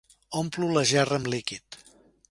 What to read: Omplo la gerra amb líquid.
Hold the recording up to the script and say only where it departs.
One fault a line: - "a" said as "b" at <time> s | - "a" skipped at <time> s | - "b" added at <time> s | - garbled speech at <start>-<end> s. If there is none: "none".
none